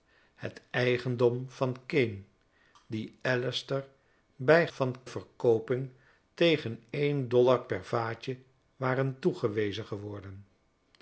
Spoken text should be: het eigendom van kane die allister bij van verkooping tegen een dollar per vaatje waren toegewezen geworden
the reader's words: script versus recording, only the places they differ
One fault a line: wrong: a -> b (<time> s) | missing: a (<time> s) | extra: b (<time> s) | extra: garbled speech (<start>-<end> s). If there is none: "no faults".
no faults